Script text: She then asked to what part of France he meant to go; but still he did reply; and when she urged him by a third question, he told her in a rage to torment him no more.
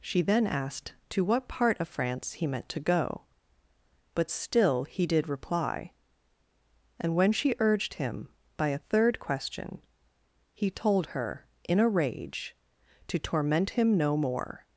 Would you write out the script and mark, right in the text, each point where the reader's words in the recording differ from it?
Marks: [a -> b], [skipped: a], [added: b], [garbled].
She then asked to what part of France he meant to go; but still he did reply; and when she urged him by a third question, he told her in a rage to torment him no more.